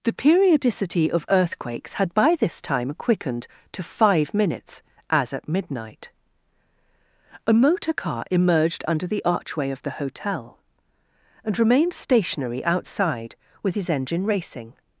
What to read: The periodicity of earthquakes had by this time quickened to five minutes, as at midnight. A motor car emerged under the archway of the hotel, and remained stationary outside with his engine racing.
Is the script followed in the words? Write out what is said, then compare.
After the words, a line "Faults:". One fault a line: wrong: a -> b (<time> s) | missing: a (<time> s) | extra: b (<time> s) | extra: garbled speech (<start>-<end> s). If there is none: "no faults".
The periodicity of earthquakes had by this time quickened to five minutes, as at midnight. A motor car emerged under the archway of the hotel, and remained stationary outside with his engine racing.
Faults:
no faults